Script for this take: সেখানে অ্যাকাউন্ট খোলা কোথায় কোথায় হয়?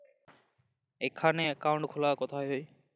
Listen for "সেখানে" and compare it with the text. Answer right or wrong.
wrong